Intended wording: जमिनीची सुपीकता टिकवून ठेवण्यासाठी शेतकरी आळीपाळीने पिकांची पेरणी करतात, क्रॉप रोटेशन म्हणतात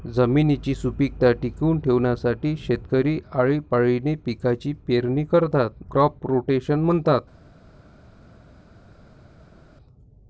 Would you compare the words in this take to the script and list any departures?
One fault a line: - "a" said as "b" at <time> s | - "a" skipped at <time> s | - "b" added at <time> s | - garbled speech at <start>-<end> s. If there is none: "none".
none